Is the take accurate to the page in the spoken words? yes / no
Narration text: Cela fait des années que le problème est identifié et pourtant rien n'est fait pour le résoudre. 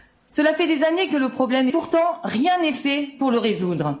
no